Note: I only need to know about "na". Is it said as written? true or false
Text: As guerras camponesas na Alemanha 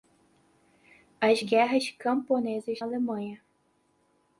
false